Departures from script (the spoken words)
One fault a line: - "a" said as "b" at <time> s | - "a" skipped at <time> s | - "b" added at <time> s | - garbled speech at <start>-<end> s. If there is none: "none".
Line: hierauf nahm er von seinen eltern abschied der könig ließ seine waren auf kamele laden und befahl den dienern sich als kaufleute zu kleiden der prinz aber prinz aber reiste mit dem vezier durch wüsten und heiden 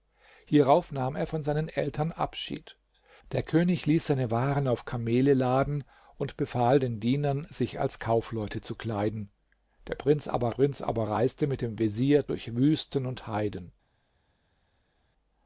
none